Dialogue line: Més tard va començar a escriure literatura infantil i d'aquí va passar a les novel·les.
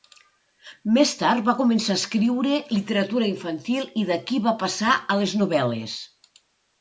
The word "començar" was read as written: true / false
true